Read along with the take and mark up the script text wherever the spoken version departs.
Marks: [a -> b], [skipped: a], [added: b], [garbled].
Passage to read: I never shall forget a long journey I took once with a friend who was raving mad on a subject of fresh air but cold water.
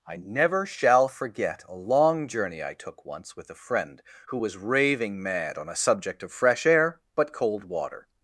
I never shall forget a long journey I took once with a friend who was raving mad on a subject of fresh air but cold water.